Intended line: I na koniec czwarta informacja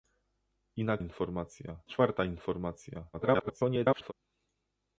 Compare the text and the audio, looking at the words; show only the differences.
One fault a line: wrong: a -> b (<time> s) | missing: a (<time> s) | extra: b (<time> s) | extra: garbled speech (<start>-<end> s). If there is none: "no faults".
wrong: koniec -> informacja (1.0 s)
extra: garbled speech (3.1-4.1 s)